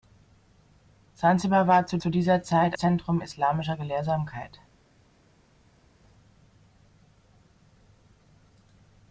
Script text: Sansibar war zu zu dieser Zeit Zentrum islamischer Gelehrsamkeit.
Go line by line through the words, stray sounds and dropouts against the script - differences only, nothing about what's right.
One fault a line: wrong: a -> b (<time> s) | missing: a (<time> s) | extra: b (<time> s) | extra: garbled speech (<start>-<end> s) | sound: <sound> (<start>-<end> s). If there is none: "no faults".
no faults